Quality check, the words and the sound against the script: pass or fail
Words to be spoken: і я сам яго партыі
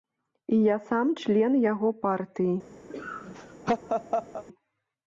fail